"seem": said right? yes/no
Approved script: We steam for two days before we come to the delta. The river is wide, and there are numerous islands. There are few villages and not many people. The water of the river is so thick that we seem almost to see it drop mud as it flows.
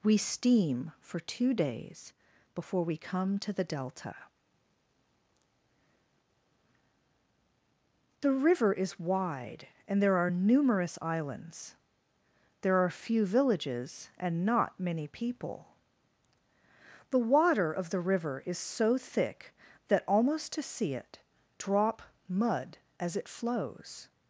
no